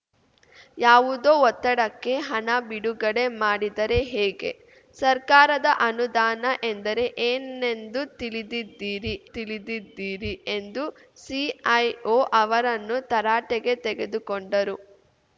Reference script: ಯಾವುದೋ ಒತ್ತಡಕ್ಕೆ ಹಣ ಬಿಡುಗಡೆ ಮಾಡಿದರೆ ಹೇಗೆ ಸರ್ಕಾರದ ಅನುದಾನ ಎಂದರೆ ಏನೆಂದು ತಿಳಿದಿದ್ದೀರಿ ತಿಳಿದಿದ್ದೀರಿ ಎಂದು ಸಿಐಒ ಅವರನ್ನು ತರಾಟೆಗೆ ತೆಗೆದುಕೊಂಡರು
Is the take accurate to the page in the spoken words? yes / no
yes